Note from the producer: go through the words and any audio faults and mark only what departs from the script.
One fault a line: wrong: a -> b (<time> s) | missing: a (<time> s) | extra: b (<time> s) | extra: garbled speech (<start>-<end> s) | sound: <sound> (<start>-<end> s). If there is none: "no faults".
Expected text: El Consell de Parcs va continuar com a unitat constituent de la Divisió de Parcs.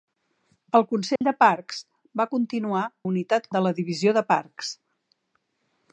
sound: dropout (1.2-1.2 s)
missing: com (2.9 s)
missing: constituent (3.5 s)